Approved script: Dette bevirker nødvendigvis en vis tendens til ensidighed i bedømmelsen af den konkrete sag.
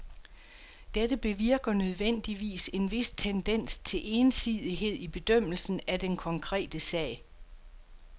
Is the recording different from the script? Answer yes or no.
no